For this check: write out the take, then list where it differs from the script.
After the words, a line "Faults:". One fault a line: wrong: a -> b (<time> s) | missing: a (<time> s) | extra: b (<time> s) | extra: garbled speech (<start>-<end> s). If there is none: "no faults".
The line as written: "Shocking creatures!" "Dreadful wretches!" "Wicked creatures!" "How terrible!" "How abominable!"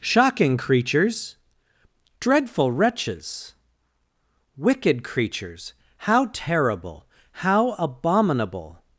"Shocking creatures!" "Dreadful wretches!" "Wicked creatures!" "How terrible!" "How abominable!"
Faults:
no faults